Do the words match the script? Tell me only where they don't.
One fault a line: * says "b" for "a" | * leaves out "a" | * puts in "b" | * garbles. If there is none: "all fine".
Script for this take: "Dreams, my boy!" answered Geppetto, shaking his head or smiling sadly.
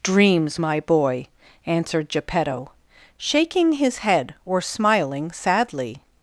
all fine